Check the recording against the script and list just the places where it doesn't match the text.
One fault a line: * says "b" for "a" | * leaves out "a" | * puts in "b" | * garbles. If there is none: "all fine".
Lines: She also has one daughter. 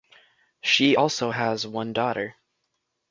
all fine